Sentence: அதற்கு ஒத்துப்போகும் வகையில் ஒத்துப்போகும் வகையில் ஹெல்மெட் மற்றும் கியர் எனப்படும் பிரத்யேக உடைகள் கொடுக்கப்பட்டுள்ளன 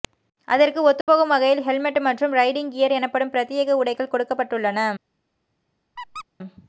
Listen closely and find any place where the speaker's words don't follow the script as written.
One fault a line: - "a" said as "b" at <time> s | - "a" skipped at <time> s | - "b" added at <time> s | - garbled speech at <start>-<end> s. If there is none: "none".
- "ஒத்துப்போகும் வகையில்" skipped at 1.6 s
- "ரைடிங்" added at 2.4 s